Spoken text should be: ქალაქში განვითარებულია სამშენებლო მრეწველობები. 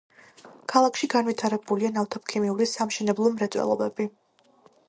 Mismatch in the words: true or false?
true